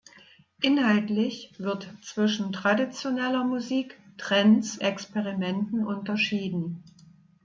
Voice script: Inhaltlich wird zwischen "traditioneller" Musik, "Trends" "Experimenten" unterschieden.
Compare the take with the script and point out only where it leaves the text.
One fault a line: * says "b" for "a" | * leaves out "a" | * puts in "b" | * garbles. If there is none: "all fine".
all fine